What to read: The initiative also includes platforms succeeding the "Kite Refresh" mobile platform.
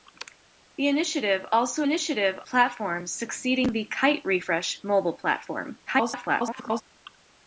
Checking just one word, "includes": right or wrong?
wrong